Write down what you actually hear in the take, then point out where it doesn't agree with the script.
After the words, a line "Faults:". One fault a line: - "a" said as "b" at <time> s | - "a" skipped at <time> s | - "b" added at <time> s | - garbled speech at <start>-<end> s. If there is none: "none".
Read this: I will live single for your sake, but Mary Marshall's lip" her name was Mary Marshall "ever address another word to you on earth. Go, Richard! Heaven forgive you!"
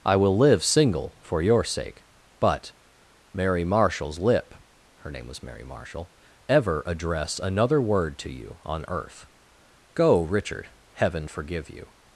I will live single for your sake, but Mary Marshall's lip" her name was Mary Marshall "ever address another word to you on earth. Go, Richard! Heaven forgive you!"
Faults:
none